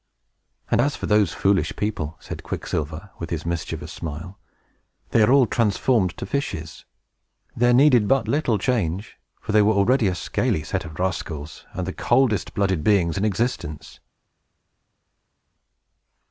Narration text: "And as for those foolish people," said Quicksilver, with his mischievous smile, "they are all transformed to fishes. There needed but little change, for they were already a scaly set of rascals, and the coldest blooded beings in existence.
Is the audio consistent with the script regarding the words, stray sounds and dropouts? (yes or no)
yes